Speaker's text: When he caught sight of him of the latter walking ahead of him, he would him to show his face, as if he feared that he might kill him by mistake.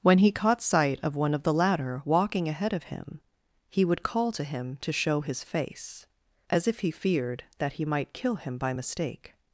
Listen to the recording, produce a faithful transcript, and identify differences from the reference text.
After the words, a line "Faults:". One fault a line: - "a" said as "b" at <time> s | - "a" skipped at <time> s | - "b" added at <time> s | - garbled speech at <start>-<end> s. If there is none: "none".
When he caught sight of one of the latter walking ahead of him, he would call to him to show his face, as if he feared that he might kill him by mistake.
Faults:
- "him" said as "one" at 1.1 s
- "call to" added at 4.0 s